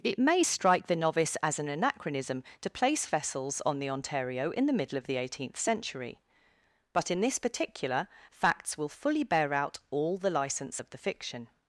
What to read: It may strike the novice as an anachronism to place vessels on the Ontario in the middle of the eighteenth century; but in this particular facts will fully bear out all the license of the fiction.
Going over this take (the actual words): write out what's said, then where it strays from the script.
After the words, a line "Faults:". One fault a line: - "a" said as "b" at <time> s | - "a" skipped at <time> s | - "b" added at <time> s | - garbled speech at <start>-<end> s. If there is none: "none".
It may strike the novice as an anachronism to place vessels on the Ontario in the middle of the eighteenth century; but in this particular facts will fully bear out all the license of the fiction.
Faults:
none